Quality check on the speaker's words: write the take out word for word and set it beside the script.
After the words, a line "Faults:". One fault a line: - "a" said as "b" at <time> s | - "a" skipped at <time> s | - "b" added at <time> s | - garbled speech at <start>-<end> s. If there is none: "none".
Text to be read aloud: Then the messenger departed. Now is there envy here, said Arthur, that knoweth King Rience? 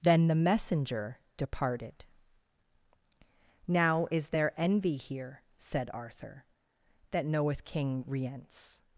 Then the messenger departed. Now is there envy here, said Arthur, that knoweth King Rience?
Faults:
none